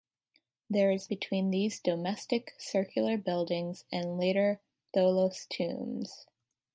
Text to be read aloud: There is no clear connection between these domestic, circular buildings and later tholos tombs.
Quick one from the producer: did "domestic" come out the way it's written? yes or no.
yes